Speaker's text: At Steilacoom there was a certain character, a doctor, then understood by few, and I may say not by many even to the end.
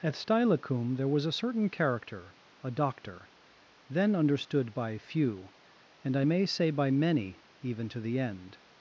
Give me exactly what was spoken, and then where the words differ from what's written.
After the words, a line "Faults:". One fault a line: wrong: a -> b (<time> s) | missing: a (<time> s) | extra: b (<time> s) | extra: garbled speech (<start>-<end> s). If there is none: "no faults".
At Steilacoom there was a certain character, a doctor, then understood by few, and I may say by many even to the end.
Faults:
missing: not (6.7 s)